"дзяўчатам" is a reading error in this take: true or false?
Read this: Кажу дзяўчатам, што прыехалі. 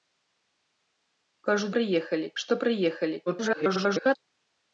true